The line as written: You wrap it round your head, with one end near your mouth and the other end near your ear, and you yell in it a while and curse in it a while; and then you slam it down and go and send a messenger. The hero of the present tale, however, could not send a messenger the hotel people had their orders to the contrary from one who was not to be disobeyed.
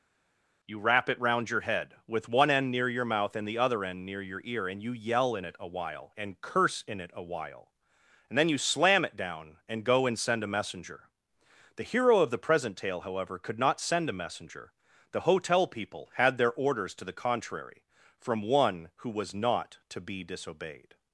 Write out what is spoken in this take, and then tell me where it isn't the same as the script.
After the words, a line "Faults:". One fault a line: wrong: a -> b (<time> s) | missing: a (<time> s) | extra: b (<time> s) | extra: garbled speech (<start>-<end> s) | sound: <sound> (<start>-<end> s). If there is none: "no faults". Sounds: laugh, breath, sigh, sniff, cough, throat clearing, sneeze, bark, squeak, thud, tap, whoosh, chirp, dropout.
You wrap it round your head, with one end near your mouth and the other end near your ear, and you yell in it a while and curse in it a while; and then you slam it down and go and send a messenger. The hero of the present tale, however, could not send a messenger the hotel people had their orders to the contrary from one who was not to be disobeyed.
Faults:
no faults